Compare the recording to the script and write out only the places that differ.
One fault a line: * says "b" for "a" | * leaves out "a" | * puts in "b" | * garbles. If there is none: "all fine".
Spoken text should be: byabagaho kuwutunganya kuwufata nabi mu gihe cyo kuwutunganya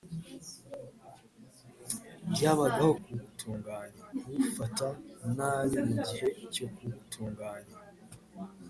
all fine